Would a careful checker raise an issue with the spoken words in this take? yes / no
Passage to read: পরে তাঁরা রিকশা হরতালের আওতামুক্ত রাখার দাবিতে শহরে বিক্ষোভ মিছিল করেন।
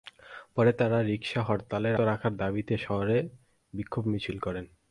yes